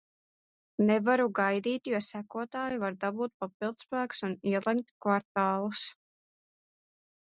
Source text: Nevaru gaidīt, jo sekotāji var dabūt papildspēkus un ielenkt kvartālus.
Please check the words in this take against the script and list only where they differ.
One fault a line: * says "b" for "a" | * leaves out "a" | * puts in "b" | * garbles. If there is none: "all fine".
all fine